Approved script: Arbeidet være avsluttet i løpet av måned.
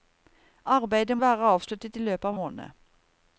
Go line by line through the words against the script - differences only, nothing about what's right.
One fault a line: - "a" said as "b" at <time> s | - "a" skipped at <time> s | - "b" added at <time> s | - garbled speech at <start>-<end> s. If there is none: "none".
none